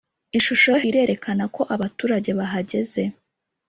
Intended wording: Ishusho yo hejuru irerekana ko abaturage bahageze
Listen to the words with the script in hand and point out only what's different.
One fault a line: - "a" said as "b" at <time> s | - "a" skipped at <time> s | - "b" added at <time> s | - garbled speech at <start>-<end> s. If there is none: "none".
- "hejuru" skipped at 0.8 s